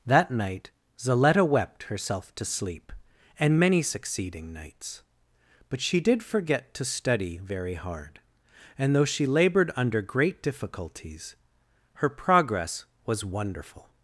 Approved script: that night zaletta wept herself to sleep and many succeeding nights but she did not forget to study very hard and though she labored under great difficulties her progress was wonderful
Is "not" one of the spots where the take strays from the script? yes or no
yes